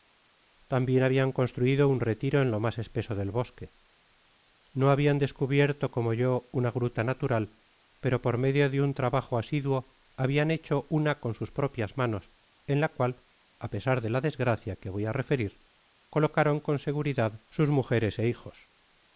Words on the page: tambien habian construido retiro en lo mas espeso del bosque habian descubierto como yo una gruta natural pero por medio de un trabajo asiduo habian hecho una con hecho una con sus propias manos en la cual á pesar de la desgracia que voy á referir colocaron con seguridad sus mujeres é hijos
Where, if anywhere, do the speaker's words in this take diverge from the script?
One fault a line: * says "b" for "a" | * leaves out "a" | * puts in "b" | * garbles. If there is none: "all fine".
* puts in "un"
* puts in "no"
* leaves out "hecho una con"